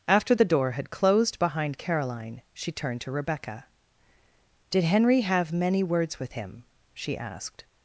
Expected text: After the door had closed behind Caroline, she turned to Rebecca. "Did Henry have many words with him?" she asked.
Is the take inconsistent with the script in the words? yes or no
no